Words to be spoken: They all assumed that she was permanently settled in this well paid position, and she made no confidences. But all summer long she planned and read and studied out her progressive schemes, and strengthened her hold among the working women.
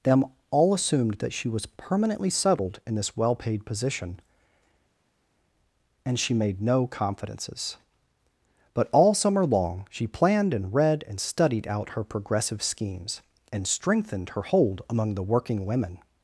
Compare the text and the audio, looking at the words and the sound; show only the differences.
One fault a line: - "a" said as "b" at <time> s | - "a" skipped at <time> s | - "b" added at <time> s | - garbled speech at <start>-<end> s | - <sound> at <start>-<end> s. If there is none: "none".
- "They" said as "Them" at 0.0 s